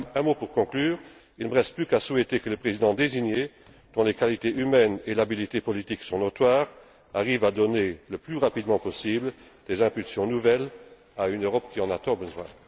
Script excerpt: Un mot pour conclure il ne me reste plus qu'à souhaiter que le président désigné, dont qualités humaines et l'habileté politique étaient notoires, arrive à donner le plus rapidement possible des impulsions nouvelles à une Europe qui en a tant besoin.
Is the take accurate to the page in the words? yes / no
no